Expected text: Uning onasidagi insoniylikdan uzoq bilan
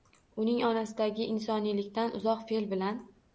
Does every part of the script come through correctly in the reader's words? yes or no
no